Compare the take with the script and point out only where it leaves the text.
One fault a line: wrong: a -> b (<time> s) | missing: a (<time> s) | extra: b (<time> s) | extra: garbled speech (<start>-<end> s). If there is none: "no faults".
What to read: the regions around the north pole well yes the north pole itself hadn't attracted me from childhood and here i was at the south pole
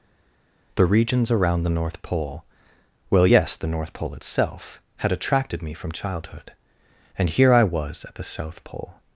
wrong: hadn't -> had (5.0 s)